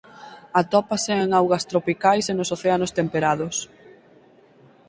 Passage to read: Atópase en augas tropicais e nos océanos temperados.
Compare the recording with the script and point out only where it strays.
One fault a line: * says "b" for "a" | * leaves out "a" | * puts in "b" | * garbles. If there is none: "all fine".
all fine